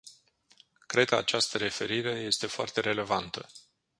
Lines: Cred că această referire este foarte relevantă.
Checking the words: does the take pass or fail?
fail